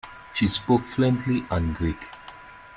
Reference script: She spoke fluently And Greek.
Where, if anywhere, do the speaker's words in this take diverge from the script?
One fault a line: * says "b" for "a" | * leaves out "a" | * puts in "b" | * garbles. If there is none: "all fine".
all fine